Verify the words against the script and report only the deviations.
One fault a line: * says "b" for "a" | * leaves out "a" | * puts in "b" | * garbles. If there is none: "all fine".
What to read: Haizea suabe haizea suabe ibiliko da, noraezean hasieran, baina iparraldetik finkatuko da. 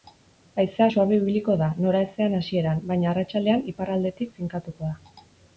* leaves out "haizea suabe"
* puts in "arratsaldean"